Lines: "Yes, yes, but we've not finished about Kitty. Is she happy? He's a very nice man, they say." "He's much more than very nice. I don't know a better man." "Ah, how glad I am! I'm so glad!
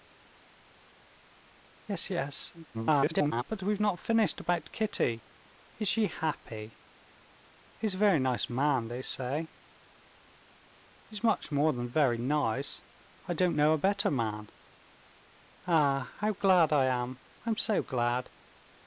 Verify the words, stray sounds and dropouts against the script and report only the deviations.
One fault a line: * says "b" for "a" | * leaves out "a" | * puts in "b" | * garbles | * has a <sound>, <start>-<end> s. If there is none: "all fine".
* garbles